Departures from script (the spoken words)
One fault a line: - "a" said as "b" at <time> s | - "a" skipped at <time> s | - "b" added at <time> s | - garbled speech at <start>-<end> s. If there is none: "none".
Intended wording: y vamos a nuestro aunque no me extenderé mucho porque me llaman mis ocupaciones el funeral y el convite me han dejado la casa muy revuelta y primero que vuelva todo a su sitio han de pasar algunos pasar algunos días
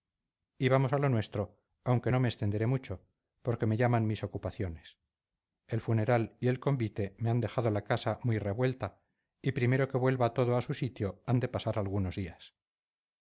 - "lo" added at 1.0 s
- "pasar algunos" skipped at 12.2 s